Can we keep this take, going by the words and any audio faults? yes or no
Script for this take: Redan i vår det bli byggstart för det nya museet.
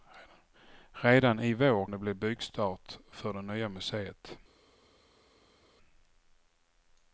yes